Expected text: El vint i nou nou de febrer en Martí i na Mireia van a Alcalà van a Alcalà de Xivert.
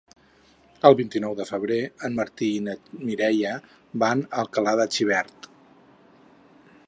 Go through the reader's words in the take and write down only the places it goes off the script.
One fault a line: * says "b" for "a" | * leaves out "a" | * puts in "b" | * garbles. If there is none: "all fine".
* leaves out "nou"
* leaves out "van a Alcalà"